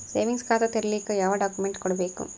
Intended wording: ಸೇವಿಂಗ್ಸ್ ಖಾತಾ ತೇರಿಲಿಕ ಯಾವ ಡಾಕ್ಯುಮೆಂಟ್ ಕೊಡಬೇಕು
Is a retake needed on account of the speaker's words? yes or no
no